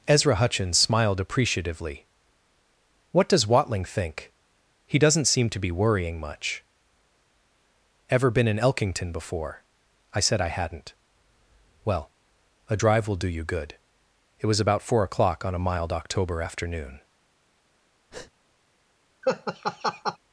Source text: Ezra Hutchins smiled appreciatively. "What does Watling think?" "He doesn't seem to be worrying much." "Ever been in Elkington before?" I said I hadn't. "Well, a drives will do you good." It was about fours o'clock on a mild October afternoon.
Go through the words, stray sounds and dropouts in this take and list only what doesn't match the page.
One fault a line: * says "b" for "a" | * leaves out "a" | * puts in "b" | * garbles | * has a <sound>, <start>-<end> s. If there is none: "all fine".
* says "drive" for "drives"
* says "four" for "fours"
* has a breath, 18.1-18.3 s
* has a laugh, 19.2-20.2 s